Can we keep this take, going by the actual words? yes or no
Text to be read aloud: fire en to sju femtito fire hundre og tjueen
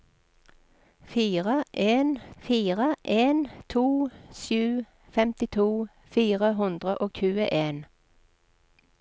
no